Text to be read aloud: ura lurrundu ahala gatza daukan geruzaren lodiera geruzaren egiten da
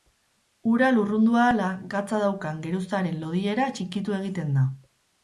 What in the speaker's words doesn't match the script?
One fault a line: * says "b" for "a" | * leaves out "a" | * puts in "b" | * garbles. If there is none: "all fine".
* says "txikitu" for "geruzaren"